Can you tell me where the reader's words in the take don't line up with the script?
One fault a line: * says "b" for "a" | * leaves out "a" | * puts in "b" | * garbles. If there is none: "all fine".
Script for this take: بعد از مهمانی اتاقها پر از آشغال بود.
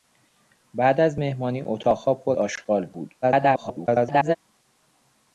* leaves out "از"
* garbles